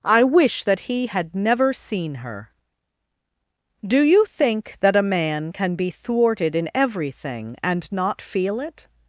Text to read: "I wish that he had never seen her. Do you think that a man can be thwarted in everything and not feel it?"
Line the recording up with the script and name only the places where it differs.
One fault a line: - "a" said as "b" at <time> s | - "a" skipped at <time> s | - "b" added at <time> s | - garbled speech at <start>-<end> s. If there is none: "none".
none